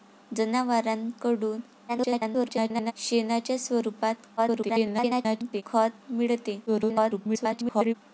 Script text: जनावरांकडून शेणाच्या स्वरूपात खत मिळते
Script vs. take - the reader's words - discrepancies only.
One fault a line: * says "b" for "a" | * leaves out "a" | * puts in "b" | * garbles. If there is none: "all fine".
* garbles
* garbles
* garbles